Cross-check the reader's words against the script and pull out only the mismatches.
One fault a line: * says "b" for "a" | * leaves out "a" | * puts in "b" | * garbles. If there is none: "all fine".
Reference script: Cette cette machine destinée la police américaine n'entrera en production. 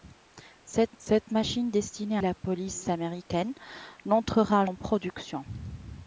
all fine